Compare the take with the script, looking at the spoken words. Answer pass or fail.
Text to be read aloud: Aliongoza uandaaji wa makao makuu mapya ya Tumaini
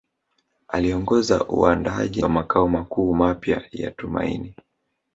pass